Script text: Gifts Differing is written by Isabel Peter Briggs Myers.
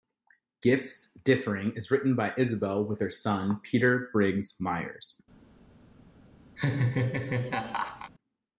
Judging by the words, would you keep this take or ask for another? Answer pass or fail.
fail